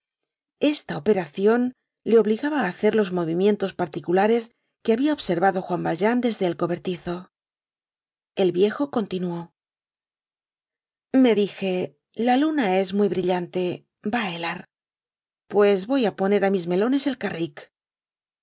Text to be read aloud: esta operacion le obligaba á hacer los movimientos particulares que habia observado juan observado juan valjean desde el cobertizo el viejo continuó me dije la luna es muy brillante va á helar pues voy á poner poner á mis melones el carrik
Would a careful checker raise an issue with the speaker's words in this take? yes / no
yes